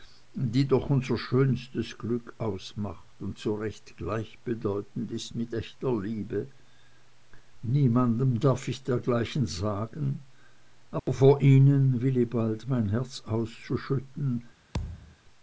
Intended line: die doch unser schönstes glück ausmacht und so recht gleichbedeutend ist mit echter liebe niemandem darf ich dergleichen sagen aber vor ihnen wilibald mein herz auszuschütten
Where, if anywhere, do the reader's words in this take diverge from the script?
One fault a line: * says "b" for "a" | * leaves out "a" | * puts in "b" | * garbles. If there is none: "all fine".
all fine